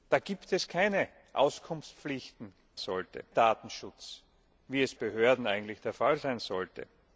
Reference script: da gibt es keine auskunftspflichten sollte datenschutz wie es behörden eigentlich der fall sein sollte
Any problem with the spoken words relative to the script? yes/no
no